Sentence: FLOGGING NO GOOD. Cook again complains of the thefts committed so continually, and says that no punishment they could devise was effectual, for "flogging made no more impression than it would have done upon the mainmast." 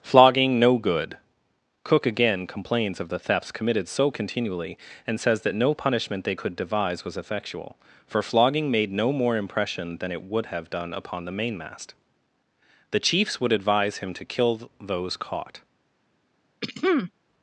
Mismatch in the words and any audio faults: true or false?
true